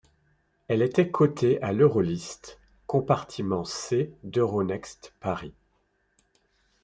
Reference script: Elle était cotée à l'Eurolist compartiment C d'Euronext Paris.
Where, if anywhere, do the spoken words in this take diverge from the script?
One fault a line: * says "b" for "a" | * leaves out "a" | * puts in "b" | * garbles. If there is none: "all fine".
all fine